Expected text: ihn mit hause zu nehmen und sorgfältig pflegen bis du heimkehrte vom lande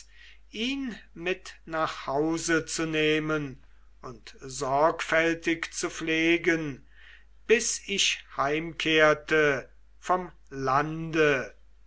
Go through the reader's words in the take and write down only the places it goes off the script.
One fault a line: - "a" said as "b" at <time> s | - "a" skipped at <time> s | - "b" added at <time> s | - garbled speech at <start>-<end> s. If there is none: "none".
- "nach" added at 1.6 s
- "zu" added at 5.8 s
- "du" said as "ich" at 7.9 s